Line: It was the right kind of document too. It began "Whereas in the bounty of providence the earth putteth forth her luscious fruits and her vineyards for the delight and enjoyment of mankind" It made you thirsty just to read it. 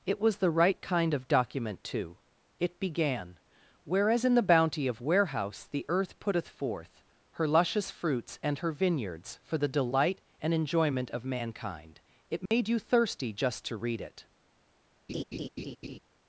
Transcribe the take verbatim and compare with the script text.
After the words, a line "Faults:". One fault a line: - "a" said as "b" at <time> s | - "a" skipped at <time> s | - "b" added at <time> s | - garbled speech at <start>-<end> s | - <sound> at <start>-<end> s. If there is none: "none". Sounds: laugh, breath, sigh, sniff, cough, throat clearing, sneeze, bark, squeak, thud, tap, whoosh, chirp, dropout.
It was the right kind of document too. It began "Whereas in the bounty of warehouse the earth putteth forth her luscious fruits and her vineyards for the delight and enjoyment of mankind" It made you thirsty just to read it.
Faults:
- "providence" said as "warehouse" at 5.0 s
- dropout at 12.5-12.5 s
- laugh at 15.1-16.0 s